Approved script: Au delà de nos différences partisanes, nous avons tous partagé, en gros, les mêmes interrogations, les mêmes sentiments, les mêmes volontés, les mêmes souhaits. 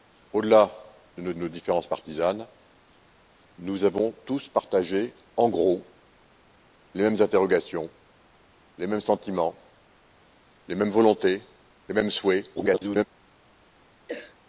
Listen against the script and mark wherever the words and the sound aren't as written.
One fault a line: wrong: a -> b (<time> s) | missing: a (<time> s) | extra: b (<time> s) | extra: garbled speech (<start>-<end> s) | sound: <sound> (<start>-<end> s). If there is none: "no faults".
extra: nos (1.4 s)
extra: garbled speech (12.6-13.0 s)
sound: cough (14.1-14.4 s)